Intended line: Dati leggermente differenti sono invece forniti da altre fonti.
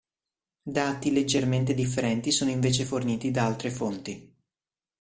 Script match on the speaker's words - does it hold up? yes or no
yes